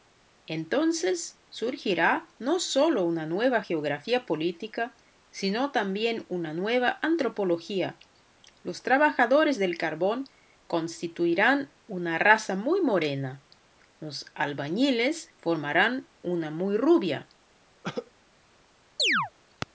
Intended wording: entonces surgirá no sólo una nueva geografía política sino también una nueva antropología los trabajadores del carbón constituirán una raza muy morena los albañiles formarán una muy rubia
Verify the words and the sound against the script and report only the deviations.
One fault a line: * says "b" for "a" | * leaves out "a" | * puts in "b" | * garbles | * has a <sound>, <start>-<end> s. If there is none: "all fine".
* has a cough, 17.8-18.1 s
* has a chirp, 19.0-19.3 s